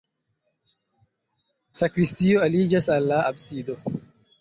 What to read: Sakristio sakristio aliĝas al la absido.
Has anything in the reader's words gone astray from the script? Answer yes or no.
yes